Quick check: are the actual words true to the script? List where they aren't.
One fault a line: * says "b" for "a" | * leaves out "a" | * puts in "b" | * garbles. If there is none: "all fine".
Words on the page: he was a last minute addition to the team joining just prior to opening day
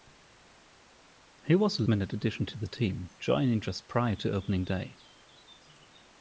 * leaves out "last"